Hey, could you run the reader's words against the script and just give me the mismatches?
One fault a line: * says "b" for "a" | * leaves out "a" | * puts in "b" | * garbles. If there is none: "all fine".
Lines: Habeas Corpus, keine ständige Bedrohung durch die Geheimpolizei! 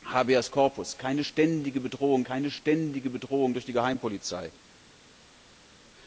* puts in "keine ständige Bedrohung"